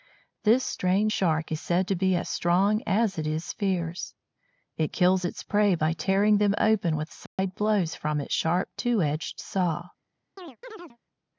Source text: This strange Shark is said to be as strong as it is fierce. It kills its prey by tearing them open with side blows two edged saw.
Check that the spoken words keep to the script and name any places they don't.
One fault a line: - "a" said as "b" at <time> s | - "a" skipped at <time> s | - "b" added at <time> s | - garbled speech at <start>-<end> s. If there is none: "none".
- "from its sharp" added at 8.0 s